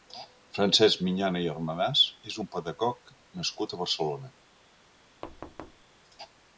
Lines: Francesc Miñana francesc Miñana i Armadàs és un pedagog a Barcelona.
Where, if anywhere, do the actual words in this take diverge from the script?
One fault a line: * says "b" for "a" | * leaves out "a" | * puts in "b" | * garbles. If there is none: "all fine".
* leaves out "francesc Miñana"
* puts in "nascut"